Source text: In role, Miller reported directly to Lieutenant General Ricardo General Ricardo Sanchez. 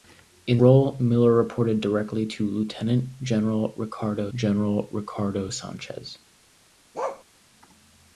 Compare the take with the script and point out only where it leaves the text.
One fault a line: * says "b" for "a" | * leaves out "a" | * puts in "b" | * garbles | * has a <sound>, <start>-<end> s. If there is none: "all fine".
* has a bark, 6.9-7.2 s